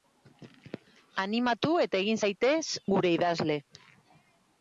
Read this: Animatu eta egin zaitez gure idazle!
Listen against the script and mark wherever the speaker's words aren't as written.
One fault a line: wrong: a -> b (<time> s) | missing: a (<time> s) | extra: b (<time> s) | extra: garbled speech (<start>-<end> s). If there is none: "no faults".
no faults